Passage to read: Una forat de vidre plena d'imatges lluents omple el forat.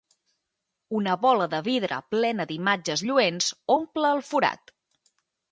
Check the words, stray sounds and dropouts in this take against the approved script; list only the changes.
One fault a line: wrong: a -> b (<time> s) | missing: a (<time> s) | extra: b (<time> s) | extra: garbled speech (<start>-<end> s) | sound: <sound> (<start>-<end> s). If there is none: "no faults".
wrong: forat -> bola (1.2 s)